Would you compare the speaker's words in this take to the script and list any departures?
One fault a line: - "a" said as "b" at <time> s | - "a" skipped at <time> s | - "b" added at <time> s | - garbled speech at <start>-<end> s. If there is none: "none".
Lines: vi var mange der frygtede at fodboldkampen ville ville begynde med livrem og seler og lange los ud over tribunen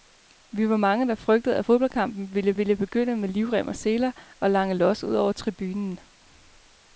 none